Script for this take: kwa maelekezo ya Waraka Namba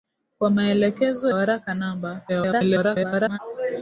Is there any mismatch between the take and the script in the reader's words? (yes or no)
yes